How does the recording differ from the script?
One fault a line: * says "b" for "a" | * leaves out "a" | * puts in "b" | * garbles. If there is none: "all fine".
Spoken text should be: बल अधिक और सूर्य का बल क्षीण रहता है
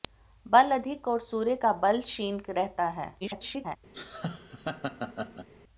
* garbles